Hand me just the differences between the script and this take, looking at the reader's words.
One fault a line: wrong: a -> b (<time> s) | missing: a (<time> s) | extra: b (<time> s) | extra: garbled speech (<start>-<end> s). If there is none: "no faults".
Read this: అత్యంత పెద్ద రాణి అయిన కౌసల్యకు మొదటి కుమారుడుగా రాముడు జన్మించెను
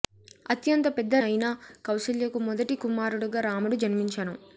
missing: రాణి (1.1 s)